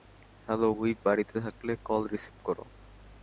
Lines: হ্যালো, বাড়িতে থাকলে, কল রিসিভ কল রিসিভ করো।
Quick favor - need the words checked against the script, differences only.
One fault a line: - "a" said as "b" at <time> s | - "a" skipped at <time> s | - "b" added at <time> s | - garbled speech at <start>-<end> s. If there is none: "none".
- "হুইপ" added at 0.7 s
- "কল রিসিভ" skipped at 2.4 s